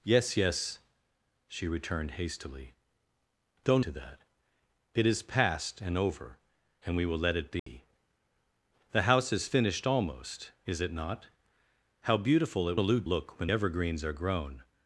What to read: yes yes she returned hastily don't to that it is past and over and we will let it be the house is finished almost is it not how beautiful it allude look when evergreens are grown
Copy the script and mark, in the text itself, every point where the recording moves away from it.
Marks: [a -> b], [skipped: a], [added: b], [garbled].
yes yes she returned hastily don't to that it is past and over and we will let it be the house is finished almost is it not how beautiful it allude look when evergreens are grown